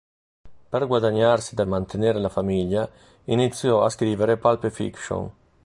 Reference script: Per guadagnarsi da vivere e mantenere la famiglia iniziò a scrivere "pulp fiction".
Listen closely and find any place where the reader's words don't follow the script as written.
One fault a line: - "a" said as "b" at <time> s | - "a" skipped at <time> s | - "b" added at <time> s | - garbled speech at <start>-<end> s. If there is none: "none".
- "vivere" skipped at 1.6 s